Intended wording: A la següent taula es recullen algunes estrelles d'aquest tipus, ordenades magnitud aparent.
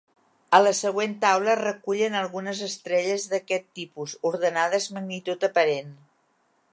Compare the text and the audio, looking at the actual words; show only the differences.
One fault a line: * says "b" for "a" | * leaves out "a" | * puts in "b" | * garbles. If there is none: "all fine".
all fine